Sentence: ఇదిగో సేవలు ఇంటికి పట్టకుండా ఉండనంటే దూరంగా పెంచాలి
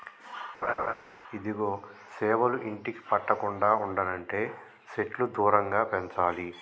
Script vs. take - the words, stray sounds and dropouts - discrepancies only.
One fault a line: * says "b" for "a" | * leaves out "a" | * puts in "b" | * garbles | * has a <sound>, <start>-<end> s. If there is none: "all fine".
* has a laugh, 0.6-0.9 s
* puts in "సెట్లు"